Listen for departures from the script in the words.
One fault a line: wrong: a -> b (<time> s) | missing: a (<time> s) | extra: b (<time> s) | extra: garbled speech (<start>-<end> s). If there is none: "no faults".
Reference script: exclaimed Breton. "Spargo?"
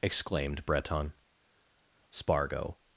no faults